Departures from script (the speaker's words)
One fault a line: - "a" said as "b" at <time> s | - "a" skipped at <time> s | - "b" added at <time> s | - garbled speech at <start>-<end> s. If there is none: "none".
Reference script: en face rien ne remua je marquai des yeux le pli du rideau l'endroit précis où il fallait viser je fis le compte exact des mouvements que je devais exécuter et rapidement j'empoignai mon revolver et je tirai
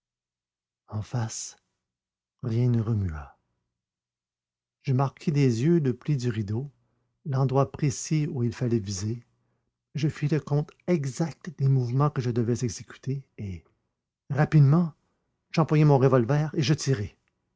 none